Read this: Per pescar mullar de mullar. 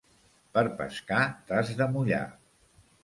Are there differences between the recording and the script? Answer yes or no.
yes